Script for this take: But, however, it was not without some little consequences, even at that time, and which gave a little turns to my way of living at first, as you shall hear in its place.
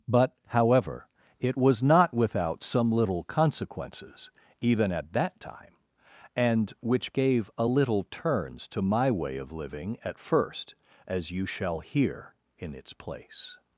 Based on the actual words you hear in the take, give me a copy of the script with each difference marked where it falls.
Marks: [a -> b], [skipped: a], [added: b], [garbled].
But, however, it was not without some little consequences, even at that time, and which gave a little turns to my way of living at first, as you shall hear in its place.